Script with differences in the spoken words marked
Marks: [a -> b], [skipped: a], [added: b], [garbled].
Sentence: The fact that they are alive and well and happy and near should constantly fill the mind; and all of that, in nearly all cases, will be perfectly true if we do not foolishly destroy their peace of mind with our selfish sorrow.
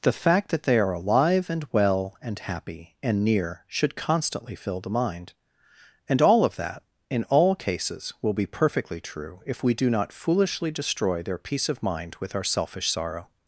The fact that they are alive and well and happy and near should constantly fill the mind; and all of that, in [skipped: nearly] all cases, will be perfectly true if we do not foolishly destroy their peace of mind with our selfish sorrow.